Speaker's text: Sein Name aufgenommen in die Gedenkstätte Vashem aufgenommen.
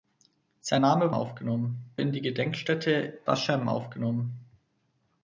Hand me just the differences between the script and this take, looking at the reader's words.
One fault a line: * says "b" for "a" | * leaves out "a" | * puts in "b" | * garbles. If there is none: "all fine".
all fine